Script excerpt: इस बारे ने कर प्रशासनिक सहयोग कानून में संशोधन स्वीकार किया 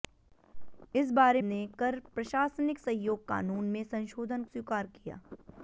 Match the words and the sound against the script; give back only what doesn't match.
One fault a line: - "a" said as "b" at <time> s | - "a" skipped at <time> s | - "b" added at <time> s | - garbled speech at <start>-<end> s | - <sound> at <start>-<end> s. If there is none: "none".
none